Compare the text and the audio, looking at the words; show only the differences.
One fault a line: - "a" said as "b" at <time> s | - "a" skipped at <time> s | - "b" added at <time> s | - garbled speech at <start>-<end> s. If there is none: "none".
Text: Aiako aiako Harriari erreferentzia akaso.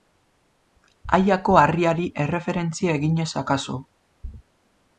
- "aiako" skipped at 1.6 s
- "eginez" added at 3.0 s